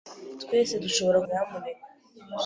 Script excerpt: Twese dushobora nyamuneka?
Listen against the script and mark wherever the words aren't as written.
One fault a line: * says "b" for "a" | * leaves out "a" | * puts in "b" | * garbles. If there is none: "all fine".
all fine